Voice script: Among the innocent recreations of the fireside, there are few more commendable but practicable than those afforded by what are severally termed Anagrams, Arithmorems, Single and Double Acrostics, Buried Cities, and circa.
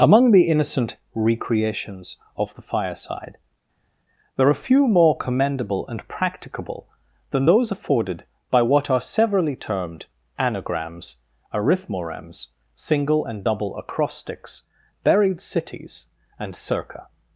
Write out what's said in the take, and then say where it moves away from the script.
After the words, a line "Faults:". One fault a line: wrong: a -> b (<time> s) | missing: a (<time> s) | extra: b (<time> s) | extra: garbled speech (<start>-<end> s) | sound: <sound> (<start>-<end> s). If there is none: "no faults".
Among the innocent recreations of the fireside, there are few more commendable and practicable than those afforded by what are severally termed Anagrams, Arithmorems, Single and Double Acrostics, Buried Cities, and circa.
Faults:
wrong: but -> and (5.9 s)